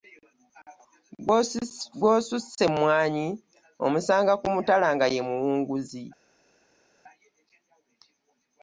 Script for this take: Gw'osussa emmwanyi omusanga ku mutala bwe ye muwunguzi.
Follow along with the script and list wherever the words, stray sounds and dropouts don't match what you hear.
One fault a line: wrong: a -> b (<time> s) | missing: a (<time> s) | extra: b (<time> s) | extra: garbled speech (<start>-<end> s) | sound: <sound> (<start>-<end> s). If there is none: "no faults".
wrong: bwe -> nga (4.9 s)